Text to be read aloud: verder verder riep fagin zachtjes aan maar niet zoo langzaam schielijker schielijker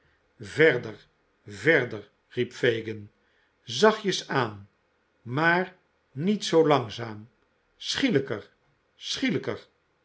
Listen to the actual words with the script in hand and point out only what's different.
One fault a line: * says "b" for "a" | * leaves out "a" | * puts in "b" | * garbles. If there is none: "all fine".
all fine